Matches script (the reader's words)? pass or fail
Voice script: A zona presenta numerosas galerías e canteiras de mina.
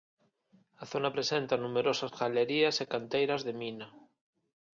pass